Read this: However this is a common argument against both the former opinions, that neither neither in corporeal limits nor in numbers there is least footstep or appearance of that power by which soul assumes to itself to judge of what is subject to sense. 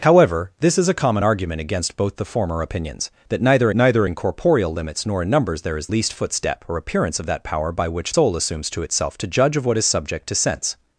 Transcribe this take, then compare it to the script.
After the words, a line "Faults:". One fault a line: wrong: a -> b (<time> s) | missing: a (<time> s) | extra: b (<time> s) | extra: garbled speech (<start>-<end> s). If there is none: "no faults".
However this is a common argument against both the former opinions, that neither neither in corporeal limits nor in numbers there is least footstep or appearance of that power by which soul assumes to itself to judge of what is subject to sense.
Faults:
no faults